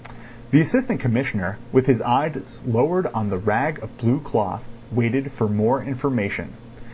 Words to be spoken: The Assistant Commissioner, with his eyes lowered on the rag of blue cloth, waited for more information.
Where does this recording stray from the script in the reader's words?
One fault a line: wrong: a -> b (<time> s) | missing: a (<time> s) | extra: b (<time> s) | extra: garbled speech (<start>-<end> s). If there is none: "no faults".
no faults